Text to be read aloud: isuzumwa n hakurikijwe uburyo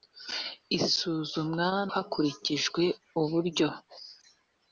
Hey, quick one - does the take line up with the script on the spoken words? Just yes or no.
yes